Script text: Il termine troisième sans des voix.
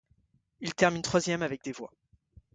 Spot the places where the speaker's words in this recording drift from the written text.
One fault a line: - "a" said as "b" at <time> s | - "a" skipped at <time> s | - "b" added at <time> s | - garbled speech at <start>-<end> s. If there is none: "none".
- "sans" said as "avec" at 1.4 s